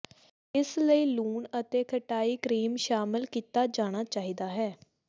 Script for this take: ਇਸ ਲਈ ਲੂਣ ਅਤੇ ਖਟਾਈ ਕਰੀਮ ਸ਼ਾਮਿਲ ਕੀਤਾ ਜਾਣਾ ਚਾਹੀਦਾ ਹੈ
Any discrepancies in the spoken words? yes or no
no